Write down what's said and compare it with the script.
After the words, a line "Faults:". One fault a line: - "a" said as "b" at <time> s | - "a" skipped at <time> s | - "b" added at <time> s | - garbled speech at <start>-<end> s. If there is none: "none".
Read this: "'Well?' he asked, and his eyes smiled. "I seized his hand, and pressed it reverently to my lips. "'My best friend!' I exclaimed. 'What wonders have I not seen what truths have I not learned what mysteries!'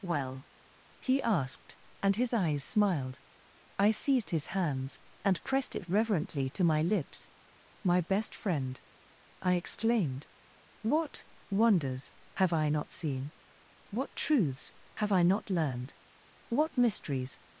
"'Well?' he asked, and his eyes smiled. "I seized his hands, and pressed it reverently to my lips. "'My best friend!' I exclaimed. 'What wonders have I not seen what truths have I not learned what mysteries!'
Faults:
- "hand" said as "hands" at 4.5 s